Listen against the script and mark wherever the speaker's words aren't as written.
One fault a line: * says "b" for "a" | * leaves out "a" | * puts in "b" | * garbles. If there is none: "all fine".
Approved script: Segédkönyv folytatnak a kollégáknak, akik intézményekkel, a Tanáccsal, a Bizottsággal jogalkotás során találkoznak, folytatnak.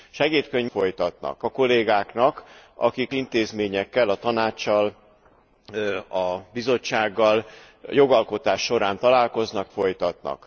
all fine